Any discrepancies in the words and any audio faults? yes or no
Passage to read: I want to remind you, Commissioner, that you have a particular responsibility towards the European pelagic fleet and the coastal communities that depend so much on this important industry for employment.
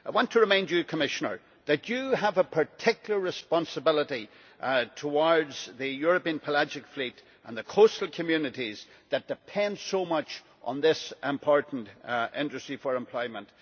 no